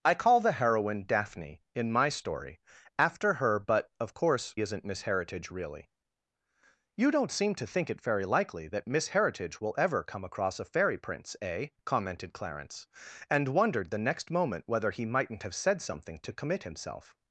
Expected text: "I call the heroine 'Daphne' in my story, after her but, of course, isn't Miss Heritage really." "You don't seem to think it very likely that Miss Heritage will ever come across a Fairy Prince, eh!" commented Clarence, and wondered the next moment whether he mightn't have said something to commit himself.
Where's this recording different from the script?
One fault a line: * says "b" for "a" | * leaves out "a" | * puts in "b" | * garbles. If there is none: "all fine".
all fine